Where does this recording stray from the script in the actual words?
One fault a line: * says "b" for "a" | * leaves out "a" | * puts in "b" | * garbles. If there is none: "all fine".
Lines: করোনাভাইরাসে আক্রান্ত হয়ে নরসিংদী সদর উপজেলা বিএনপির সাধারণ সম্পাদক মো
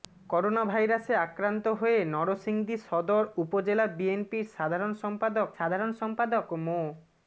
* puts in "সাধারণ সম্পাদক"